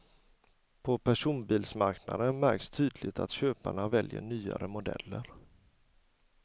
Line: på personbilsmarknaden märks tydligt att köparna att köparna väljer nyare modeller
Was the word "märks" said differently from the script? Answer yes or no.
no